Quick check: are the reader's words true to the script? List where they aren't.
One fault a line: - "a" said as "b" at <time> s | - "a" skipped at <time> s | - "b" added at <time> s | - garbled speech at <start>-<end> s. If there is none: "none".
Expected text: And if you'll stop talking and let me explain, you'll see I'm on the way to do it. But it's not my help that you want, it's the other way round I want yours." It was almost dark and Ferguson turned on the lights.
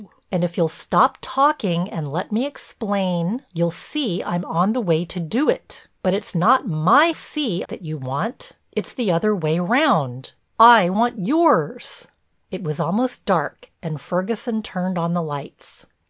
- "help" said as "see" at 7.1 s